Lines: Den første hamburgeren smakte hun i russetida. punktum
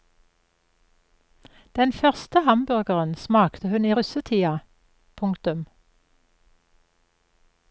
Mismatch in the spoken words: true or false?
false